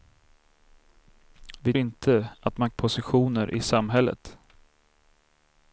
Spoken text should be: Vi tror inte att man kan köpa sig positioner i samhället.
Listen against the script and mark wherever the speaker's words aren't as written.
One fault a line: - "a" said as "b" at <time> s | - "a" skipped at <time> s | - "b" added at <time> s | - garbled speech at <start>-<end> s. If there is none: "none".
- "tror" skipped at 1.7 s
- "kan köpa sig" skipped at 2.7 s